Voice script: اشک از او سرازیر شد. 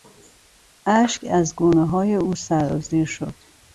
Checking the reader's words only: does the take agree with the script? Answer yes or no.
no